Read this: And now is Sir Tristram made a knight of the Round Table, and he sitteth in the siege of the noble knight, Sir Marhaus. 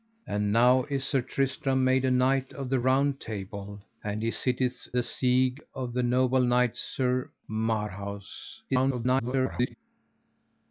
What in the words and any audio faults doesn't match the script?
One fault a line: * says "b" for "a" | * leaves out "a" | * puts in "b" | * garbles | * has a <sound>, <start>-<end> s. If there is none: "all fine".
* leaves out "in"
* garbles